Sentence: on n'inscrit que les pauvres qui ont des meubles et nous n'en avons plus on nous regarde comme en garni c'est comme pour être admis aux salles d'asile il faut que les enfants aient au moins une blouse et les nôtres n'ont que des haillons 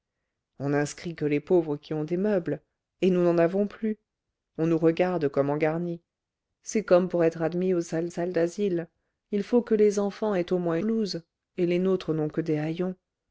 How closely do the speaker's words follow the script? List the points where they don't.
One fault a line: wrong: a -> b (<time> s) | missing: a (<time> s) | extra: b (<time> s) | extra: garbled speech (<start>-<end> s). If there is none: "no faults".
extra: salles (8.1 s)
missing: une (10.8 s)